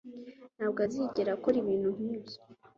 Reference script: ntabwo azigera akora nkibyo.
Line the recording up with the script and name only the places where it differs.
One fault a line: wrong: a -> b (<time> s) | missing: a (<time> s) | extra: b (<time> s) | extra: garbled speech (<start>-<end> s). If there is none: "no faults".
extra: ibintu (1.6 s)